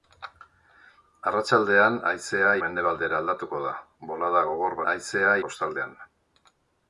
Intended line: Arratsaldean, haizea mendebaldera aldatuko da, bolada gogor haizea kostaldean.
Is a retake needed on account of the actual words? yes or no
no